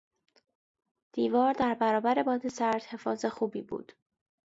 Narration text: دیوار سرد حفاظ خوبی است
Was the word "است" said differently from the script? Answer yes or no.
yes